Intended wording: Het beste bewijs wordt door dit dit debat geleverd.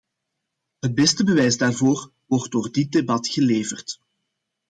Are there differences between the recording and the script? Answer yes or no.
yes